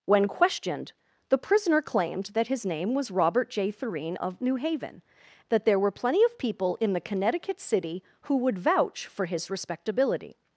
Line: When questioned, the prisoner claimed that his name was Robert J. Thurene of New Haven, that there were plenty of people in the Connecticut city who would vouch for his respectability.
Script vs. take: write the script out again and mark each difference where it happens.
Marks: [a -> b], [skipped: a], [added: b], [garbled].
When questioned, the prisoner claimed that his name was Robert J. Thurene of New Haven, that there were plenty of people in the Connecticut city who would vouch for his respectability.